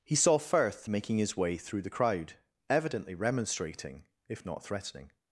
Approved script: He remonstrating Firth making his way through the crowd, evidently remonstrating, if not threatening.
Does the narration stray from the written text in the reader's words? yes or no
yes